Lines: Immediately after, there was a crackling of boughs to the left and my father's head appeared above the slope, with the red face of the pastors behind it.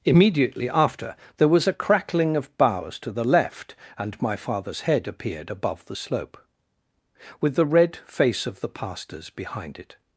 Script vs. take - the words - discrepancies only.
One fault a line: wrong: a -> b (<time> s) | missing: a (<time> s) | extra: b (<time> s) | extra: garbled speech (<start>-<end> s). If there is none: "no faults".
no faults